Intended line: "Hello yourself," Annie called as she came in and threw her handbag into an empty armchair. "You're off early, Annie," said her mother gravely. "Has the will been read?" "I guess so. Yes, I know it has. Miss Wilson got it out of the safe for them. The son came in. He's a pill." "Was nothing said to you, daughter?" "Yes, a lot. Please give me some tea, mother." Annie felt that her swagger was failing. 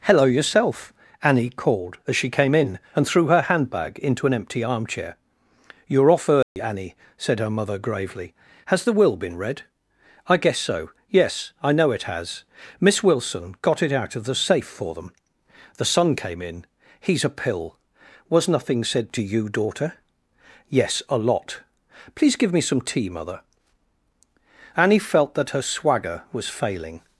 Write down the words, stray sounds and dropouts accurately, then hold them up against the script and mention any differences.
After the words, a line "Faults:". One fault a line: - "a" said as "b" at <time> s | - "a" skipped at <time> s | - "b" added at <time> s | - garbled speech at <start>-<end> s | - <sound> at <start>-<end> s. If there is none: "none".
"Hello yourself," Annie called as she came in and threw her handbag into an empty armchair. "You're off early, Annie," said her mother gravely. "Has the will been read?" "I guess so. Yes, I know it has. Miss Wilson got it out of the safe for them. The son came in. He's a pill." "Was nothing said to you, daughter?" "Yes, a lot. Please give me some tea, mother." Annie felt that her swagger was failing.
Faults:
- dropout at 6.4-6.6 s